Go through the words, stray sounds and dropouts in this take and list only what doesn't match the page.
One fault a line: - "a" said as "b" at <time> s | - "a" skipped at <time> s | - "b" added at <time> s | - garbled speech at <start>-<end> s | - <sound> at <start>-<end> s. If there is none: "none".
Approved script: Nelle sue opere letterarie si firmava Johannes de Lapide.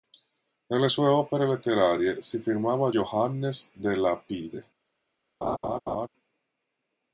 - laugh at 5.4-6.1 s